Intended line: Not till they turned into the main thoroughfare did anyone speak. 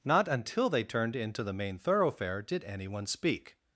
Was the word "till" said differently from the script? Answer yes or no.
yes